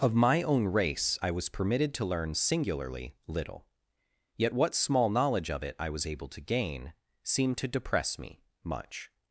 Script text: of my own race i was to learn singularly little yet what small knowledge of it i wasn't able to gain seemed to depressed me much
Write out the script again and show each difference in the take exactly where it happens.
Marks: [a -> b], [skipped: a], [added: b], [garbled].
of my own race i was [added: permitted] to learn singularly little yet what small knowledge of it i [wasn't -> was] able to gain seemed to [depressed -> depress] me much